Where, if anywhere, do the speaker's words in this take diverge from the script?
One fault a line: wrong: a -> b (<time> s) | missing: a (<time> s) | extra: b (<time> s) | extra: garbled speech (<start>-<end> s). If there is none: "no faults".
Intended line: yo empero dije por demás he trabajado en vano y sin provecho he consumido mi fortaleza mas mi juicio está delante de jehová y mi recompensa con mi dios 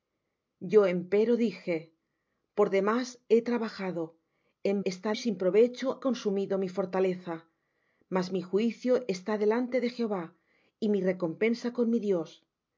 wrong: vano -> está (4.8 s)
missing: he (6.0 s)